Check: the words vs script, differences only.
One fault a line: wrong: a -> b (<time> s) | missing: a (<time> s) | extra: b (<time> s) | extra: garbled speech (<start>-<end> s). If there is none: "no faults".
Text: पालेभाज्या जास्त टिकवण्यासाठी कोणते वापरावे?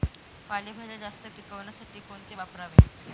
no faults